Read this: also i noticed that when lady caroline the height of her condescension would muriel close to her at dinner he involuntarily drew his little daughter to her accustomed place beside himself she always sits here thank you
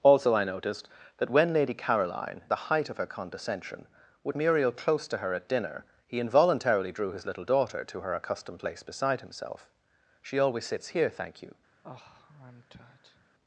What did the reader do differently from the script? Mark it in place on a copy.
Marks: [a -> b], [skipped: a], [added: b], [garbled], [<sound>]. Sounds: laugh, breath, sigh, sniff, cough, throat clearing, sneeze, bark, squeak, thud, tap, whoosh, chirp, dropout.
also i noticed that when lady caroline the height of her condescension would muriel close to her at dinner he involuntarily drew his little daughter to her accustomed place beside himself she always sits here thank you [sigh]